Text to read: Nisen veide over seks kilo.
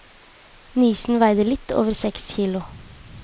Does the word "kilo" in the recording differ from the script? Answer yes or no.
no